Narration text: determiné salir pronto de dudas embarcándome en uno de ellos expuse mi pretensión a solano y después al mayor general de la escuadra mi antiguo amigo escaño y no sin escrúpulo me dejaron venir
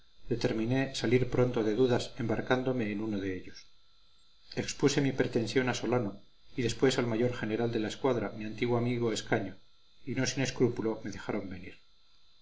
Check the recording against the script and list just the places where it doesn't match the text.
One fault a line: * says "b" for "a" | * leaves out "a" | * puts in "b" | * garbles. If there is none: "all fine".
all fine